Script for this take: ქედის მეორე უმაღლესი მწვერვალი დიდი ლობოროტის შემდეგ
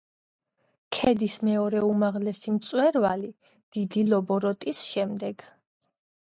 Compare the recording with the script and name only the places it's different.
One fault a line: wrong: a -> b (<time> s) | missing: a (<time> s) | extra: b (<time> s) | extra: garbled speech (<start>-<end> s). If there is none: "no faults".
no faults